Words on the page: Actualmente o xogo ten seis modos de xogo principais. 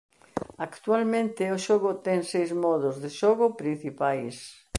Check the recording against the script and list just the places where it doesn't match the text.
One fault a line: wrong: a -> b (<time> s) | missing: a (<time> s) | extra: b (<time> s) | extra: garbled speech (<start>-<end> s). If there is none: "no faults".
no faults